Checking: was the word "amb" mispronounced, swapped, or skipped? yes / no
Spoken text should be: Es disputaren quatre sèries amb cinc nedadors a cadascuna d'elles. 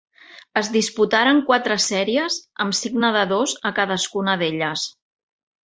no